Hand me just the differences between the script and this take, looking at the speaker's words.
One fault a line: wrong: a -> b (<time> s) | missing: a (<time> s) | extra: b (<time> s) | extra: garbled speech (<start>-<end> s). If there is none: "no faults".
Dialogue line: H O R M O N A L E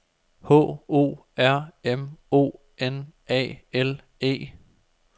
no faults